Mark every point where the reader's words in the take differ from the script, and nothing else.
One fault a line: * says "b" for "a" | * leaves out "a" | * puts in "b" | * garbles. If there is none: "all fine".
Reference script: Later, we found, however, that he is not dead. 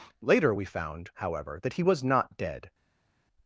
* says "was" for "is"